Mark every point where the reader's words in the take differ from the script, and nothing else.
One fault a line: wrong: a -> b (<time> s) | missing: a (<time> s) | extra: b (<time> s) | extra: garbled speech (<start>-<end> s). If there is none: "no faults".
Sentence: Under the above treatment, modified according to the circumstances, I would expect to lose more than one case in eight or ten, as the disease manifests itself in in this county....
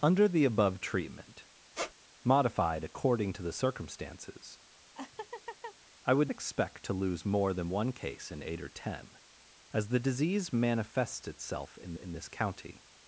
no faults